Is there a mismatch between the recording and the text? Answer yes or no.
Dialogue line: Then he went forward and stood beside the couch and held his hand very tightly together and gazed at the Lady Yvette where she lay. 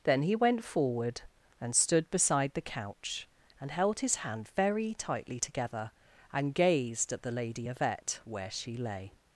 no